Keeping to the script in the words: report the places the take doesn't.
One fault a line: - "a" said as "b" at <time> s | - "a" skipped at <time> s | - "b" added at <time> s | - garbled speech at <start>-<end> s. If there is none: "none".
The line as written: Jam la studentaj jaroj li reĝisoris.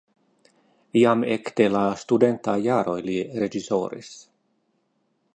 - "ekde" added at 1.3 s